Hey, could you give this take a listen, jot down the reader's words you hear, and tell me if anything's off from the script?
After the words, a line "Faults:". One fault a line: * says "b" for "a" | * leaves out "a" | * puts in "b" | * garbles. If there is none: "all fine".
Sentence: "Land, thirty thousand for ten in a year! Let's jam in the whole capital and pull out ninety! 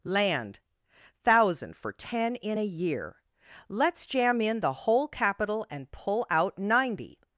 "Land, thousand for ten in a year! Let's jam in the whole capital and pull out ninety!
Faults:
* leaves out "thirty"